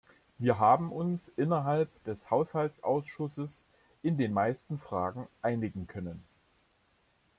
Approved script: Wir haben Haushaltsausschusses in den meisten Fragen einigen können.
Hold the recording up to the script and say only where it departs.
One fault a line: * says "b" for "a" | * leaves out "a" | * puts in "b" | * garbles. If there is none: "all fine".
* puts in "uns innerhalb des"